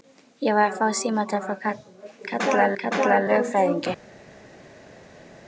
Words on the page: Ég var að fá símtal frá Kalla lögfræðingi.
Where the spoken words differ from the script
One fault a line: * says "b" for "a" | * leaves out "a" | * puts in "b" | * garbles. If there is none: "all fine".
* puts in "Kalla"